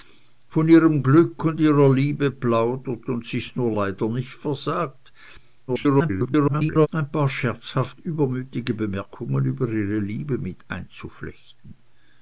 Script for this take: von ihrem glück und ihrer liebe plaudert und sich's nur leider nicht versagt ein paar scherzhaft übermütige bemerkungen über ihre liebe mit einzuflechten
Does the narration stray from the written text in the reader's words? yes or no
yes